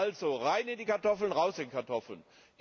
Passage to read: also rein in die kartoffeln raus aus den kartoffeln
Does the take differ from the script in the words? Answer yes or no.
yes